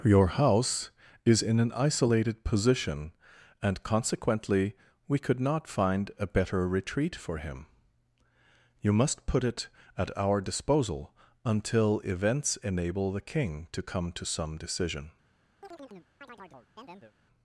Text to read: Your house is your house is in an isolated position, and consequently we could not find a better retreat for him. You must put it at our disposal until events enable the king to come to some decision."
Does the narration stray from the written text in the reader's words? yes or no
yes